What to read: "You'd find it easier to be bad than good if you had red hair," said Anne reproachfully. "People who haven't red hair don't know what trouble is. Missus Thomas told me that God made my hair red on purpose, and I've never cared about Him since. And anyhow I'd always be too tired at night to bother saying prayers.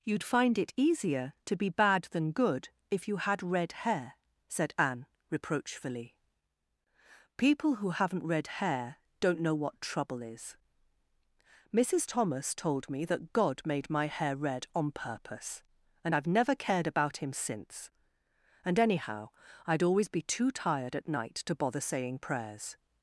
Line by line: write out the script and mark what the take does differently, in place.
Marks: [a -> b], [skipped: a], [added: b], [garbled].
"You'd find it easier to be bad than good if you had red hair," said Anne reproachfully. "People who haven't red hair don't know what trouble is. Missus Thomas told me that God made my hair red on purpose, and I've never cared about Him since. And anyhow I'd always be too tired at night to bother saying prayers.